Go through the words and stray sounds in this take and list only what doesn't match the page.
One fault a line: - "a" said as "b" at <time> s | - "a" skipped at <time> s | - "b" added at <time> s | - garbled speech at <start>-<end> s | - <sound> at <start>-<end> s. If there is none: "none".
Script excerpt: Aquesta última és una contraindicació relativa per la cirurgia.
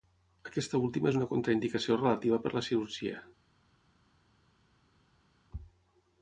none